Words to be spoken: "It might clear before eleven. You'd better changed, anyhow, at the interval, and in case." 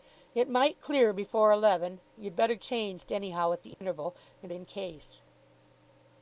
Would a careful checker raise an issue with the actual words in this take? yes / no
no